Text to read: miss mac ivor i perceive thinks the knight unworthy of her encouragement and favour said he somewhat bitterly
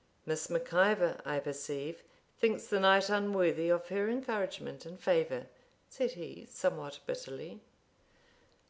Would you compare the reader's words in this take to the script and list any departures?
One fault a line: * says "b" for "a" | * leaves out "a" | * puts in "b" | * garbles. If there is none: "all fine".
all fine